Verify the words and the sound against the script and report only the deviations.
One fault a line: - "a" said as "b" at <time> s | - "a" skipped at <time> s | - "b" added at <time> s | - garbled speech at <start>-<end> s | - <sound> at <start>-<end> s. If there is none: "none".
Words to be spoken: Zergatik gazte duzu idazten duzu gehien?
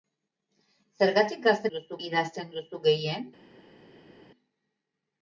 none